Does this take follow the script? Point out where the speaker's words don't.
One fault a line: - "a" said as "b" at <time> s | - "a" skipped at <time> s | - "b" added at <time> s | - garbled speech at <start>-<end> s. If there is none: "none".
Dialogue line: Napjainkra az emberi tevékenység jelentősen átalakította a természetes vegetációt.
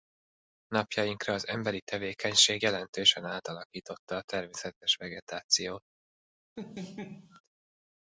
none